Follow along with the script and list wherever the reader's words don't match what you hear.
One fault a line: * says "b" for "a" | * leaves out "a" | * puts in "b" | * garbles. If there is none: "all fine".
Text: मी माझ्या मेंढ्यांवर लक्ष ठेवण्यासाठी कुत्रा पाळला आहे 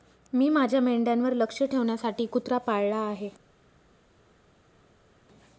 all fine